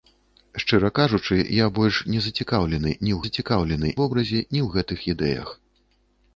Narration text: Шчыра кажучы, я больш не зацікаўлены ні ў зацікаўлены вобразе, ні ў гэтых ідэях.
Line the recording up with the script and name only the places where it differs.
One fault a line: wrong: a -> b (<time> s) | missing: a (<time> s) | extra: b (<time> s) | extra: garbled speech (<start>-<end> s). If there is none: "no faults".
no faults